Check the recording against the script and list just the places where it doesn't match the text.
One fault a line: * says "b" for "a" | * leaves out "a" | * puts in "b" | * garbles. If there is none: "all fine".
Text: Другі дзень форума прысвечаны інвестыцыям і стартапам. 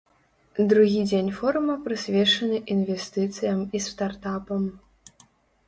all fine